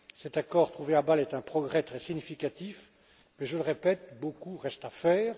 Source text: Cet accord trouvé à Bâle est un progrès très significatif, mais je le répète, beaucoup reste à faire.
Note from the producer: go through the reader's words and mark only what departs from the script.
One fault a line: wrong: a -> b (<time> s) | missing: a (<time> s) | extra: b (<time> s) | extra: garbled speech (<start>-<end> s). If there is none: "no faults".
no faults